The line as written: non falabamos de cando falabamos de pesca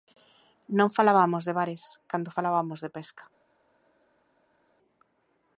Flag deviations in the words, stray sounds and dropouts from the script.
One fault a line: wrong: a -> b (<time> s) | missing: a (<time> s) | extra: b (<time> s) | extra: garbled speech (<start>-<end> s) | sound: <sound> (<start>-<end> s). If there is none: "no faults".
extra: bares (1.6 s)